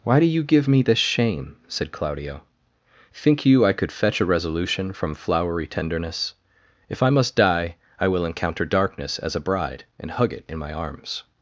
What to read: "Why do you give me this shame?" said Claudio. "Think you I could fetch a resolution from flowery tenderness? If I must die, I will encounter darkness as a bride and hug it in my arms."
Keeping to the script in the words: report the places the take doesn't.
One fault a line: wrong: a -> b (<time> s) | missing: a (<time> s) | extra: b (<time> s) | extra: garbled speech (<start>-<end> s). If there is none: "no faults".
no faults